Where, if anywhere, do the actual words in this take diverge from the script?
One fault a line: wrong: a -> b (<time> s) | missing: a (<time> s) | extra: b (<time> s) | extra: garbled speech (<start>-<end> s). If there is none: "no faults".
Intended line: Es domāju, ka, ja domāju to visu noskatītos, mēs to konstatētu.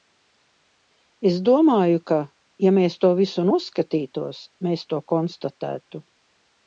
wrong: domāju -> mēs (2.8 s)